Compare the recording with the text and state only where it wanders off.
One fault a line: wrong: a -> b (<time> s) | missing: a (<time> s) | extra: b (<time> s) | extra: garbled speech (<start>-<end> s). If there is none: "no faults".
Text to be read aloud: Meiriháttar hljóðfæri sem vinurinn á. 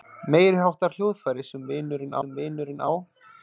extra: sem vinurinn (2.2 s)